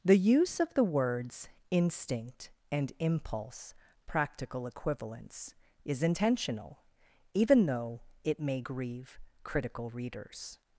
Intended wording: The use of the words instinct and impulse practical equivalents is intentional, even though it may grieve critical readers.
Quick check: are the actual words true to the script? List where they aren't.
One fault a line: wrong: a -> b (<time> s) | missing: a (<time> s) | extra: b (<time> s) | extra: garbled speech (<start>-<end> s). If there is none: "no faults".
no faults